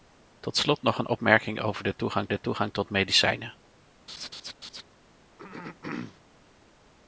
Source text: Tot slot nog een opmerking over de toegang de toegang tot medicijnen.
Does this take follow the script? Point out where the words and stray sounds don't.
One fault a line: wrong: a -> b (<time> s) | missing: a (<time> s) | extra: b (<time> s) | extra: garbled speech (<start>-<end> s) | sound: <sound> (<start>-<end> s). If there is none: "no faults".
sound: laugh (4.1-4.8 s)
sound: throat clearing (5.4-6.2 s)